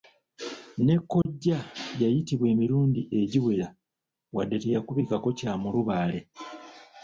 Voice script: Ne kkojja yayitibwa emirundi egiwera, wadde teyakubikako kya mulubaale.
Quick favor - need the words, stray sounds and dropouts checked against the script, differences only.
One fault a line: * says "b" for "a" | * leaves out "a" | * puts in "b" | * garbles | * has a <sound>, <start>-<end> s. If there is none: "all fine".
* has a dropout, 1.2-1.3 s